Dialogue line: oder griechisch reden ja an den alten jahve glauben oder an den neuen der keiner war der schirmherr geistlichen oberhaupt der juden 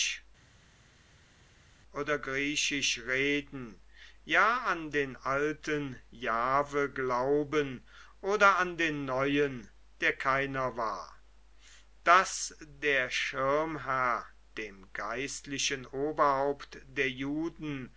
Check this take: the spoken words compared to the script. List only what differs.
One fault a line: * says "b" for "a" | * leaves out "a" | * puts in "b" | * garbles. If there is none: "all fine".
* puts in "daß"
* puts in "dem"